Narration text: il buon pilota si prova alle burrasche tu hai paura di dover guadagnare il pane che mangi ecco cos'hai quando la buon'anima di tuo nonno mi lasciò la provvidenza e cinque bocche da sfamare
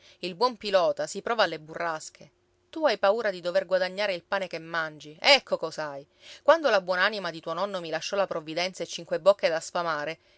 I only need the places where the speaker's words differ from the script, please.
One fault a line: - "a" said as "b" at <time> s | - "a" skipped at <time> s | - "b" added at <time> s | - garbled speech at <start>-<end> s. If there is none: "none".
none